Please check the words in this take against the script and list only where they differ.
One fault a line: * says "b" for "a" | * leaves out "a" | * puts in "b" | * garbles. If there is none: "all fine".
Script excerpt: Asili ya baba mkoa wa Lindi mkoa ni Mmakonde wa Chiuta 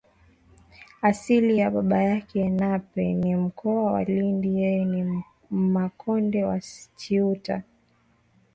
* puts in "yake Nape ni"
* says "yeye" for "mkoa"